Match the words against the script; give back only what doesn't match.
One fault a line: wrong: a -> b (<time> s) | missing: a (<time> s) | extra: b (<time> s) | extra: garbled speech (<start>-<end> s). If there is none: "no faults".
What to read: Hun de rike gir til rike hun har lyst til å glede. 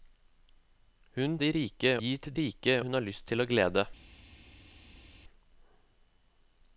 no faults